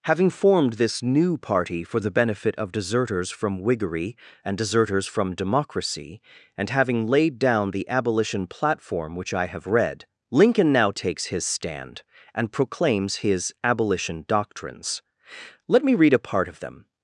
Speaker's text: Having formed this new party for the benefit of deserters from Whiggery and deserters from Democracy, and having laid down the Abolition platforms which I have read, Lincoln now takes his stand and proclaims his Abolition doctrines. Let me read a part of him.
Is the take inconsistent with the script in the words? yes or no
yes